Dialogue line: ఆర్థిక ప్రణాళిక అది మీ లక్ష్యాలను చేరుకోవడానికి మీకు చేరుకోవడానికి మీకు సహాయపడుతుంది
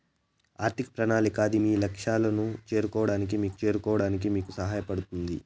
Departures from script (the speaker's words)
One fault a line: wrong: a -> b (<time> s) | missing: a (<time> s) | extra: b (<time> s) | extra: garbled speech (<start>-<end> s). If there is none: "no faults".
no faults